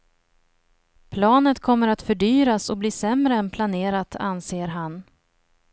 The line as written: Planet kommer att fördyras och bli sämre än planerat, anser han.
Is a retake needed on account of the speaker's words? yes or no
no